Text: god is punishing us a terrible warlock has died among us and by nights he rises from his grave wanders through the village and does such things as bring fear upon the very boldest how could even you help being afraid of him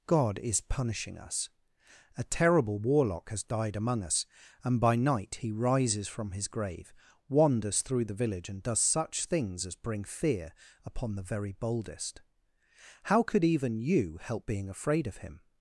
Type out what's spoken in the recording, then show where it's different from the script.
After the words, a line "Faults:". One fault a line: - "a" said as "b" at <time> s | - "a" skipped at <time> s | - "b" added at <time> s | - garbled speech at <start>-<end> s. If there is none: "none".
god is punishing us a terrible warlock has died among us and by night he rises from his grave wanders through the village and does such things as bring fear upon the very boldest how could even you help being afraid of him
Faults:
- "nights" said as "night" at 5.0 s